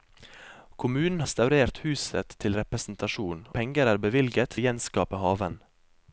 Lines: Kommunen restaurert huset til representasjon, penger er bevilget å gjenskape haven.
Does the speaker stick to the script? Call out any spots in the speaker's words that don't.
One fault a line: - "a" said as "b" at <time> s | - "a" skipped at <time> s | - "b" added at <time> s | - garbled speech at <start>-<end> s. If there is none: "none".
none